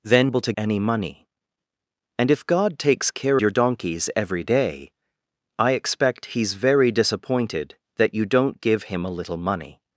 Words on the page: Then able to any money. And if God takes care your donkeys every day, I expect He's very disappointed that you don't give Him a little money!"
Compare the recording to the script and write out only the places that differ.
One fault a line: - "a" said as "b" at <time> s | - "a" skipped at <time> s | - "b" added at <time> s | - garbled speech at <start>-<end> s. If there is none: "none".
none